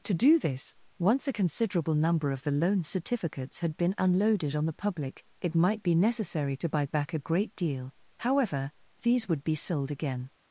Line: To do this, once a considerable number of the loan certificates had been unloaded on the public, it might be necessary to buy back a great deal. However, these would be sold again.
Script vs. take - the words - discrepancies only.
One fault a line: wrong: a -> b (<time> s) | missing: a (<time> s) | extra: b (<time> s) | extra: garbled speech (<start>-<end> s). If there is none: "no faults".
no faults